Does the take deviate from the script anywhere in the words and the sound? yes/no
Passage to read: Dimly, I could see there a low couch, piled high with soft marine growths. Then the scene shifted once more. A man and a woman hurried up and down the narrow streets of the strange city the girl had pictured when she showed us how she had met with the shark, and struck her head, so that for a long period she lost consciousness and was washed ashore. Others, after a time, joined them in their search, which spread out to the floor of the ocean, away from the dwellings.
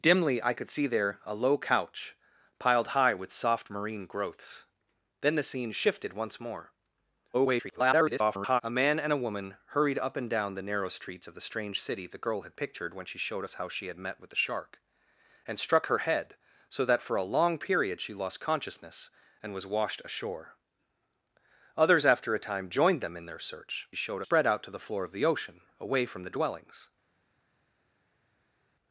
yes